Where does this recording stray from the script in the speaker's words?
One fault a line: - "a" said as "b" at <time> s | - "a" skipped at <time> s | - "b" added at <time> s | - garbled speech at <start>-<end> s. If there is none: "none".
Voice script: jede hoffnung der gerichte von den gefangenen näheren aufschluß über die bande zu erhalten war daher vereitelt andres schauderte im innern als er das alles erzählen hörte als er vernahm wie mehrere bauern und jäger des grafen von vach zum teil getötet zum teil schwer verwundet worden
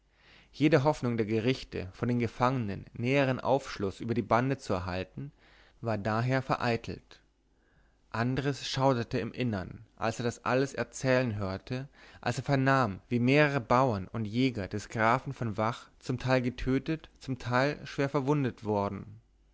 none